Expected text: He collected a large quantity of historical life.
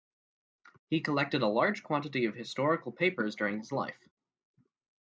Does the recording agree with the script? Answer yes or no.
no